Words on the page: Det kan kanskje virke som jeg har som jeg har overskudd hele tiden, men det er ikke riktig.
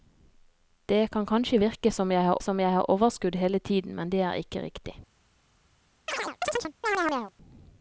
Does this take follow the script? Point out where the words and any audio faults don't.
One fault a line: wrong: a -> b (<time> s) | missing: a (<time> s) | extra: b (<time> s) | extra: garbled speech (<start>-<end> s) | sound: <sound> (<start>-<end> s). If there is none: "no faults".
sound: chirp (6.1-7.3 s)